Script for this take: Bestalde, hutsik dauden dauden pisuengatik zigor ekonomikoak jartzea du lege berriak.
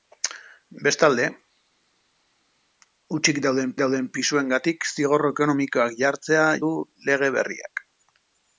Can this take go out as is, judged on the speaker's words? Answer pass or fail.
pass